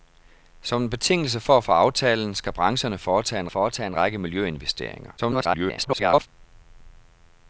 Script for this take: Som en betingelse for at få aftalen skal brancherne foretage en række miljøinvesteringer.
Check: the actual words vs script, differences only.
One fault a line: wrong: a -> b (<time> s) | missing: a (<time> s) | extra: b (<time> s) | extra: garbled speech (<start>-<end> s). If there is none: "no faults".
extra: foretage en (3.5 s)
extra: garbled speech (5.2-6.3 s)